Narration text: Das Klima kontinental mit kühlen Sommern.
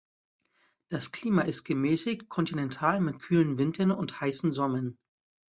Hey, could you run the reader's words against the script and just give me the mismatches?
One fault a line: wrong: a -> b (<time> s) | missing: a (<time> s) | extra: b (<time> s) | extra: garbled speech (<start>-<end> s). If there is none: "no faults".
extra: ist gemäßigt (1.4 s)
extra: Wintern und heißen (3.6 s)